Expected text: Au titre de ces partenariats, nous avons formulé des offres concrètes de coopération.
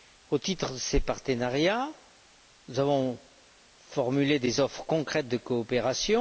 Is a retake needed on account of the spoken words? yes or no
no